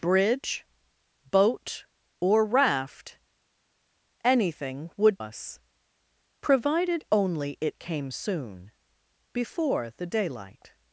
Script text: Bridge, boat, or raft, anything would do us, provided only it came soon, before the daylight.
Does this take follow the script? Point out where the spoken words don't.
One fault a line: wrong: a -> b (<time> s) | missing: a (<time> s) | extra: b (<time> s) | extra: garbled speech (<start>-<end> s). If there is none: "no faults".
missing: do (5.2 s)